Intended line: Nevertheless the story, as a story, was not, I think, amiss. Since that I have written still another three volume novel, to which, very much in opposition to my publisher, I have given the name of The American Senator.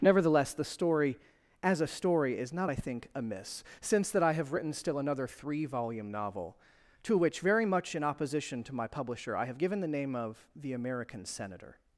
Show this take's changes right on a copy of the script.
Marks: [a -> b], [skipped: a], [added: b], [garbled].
Nevertheless the story, as a story, [was -> is] not, I think, amiss. Since that I have written still another three volume novel, to which, very much in opposition to my publisher, I have given the name of The American Senator.